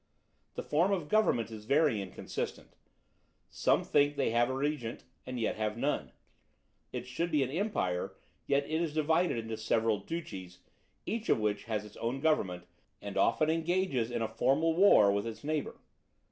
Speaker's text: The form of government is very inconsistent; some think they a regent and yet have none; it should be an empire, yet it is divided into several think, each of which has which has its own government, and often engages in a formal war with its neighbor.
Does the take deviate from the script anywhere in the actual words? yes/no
yes